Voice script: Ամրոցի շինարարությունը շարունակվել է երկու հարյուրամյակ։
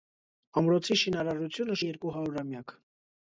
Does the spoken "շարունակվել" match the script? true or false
false